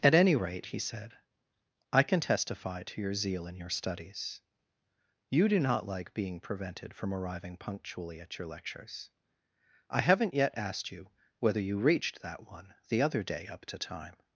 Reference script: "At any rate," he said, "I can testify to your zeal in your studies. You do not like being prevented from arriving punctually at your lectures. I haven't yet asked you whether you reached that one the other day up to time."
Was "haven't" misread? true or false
false